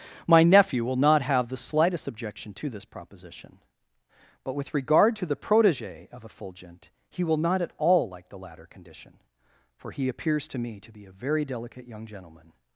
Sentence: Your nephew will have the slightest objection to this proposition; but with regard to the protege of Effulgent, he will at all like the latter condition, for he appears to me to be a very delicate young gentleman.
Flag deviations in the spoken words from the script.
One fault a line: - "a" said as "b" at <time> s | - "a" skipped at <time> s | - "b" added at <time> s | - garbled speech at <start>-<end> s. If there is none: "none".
- "Your" said as "My" at 0.3 s
- "not" added at 0.9 s
- "not" added at 7.4 s